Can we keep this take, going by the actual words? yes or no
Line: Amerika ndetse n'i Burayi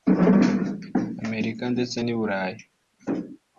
yes